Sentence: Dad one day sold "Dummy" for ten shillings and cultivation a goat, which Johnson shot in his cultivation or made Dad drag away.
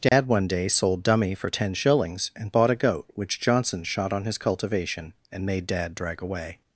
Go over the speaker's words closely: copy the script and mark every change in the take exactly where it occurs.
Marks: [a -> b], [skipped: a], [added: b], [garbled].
Dad one day sold "Dummy" for ten shillings and [cultivation -> bought] a goat, which Johnson shot [in -> on] his cultivation [or -> and] made Dad drag away.